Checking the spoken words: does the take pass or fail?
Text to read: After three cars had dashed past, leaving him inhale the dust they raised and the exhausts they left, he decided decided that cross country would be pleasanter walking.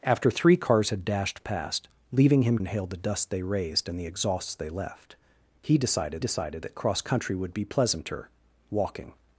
pass